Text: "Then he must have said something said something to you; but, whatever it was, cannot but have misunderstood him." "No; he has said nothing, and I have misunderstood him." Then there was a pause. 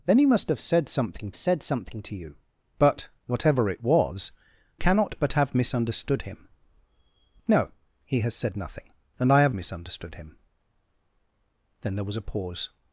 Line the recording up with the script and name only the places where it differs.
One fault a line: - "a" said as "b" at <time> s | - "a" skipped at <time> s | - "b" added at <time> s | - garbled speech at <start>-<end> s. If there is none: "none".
none